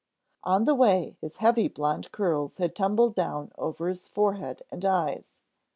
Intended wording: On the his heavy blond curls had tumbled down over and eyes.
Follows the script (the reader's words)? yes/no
no